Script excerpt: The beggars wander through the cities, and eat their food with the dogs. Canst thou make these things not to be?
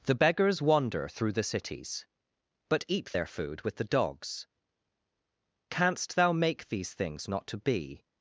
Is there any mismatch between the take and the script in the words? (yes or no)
yes